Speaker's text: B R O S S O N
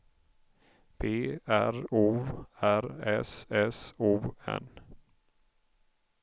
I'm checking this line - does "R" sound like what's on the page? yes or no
yes